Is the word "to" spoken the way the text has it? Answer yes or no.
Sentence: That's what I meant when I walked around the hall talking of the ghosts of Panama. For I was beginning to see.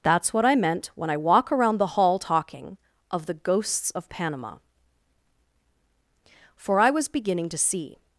yes